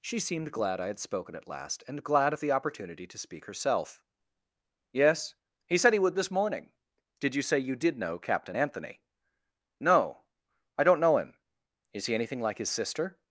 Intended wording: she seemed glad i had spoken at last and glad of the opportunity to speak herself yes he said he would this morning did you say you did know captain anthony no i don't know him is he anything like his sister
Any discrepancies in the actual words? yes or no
no